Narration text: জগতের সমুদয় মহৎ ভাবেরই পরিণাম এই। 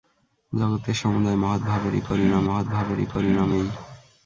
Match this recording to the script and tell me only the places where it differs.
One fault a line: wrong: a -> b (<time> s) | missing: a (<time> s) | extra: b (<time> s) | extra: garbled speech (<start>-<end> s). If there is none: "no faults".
extra: মহৎ ভাবেরই পরিণাম (2.4 s)